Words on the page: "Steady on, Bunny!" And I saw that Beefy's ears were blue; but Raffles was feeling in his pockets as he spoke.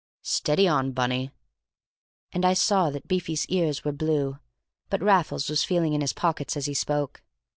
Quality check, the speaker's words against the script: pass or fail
pass